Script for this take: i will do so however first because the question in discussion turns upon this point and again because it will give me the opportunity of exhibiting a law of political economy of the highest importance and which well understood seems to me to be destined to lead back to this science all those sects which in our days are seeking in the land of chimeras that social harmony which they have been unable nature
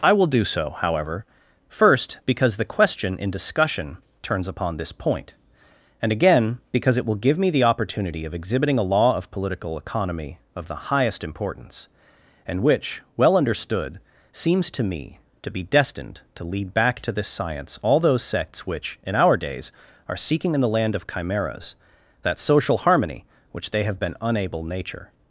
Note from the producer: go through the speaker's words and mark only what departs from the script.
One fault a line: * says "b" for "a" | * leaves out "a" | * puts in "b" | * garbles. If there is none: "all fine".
all fine